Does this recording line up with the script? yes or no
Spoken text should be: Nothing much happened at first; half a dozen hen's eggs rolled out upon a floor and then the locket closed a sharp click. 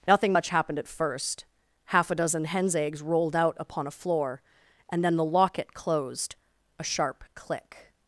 yes